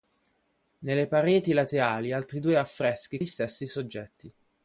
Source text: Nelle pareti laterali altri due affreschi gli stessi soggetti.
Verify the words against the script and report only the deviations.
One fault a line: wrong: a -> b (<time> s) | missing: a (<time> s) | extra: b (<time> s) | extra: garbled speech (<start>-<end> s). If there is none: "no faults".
no faults